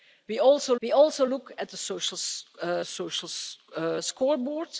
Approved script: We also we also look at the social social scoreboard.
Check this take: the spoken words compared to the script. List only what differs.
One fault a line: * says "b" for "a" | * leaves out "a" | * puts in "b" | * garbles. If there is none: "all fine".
all fine